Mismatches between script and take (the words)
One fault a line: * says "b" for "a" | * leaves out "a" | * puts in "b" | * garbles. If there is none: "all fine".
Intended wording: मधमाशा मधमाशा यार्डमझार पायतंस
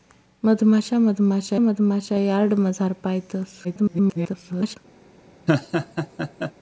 * puts in "मधमाशा"
* garbles